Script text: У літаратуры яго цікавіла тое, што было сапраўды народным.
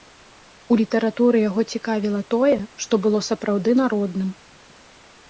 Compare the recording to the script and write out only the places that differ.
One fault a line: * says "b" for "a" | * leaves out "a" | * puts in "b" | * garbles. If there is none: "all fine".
all fine